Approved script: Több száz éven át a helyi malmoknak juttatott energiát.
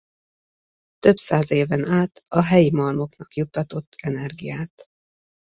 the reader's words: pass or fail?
pass